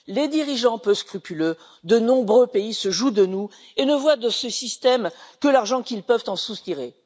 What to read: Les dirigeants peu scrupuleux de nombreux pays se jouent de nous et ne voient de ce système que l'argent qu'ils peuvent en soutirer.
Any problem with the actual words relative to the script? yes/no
no